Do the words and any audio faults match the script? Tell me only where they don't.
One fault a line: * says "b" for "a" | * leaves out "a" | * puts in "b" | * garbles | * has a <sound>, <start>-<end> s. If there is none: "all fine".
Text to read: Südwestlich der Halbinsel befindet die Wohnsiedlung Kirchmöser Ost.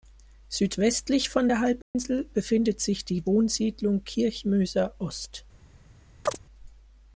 * puts in "von"
* has a dropout, 1.8-2.0 s
* puts in "sich"
* has a chirp, 6.3-6.4 s